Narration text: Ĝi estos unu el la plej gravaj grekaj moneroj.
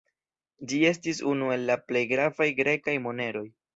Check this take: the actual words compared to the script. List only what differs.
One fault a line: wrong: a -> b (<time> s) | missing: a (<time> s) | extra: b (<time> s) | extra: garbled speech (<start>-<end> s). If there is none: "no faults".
wrong: estos -> estis (0.9 s)